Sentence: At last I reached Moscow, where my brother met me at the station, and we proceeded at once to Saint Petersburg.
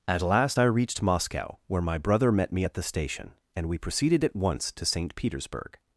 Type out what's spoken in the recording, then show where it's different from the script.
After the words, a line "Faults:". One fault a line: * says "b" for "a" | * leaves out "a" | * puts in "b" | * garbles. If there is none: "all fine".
At last I reached Moscow, where my brother met me at the station, and we proceeded at once to Saint Petersburg.
Faults:
all fine